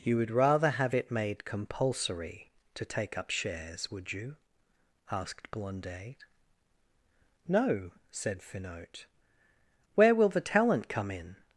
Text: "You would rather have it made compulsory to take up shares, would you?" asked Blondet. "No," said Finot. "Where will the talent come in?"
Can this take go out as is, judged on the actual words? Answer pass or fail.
pass